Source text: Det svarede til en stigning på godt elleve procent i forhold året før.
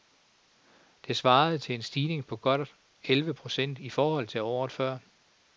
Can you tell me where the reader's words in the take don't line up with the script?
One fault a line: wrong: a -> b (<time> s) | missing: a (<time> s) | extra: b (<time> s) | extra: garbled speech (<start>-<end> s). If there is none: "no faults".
extra: til (4.3 s)